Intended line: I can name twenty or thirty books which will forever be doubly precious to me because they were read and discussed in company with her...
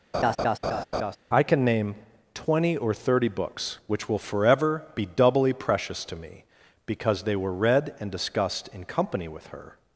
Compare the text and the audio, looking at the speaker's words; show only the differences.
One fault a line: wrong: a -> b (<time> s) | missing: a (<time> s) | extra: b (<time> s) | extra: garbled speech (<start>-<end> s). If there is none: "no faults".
no faults